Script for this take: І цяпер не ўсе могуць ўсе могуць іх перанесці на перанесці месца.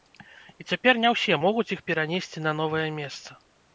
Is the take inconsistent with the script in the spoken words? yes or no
yes